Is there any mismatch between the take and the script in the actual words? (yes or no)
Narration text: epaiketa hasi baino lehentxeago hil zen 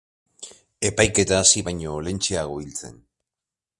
no